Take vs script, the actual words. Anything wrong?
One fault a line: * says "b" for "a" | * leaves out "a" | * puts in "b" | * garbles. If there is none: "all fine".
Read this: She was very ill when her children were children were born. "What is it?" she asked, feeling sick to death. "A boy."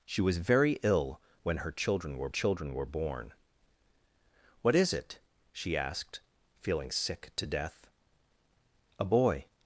all fine